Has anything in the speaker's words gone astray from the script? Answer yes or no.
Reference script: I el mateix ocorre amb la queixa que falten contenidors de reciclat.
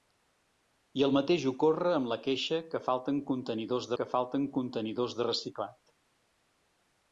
yes